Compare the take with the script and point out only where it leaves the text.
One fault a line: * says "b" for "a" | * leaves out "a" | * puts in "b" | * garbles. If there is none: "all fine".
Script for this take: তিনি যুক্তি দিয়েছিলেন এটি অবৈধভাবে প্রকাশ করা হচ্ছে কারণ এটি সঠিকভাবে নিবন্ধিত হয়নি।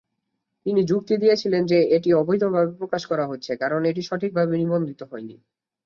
* puts in "যে"